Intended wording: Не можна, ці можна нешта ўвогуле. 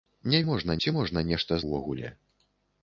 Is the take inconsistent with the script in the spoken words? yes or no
no